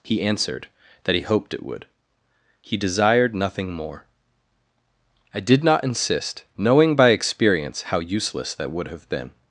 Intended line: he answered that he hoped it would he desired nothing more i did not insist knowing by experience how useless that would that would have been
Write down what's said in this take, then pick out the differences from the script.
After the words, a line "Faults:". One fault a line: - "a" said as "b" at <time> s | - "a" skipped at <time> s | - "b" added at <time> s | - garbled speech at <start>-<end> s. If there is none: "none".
he answered that he hoped it would he desired nothing more i did not insist knowing by experience how useless that would have been
Faults:
- "that would" skipped at 8.9 s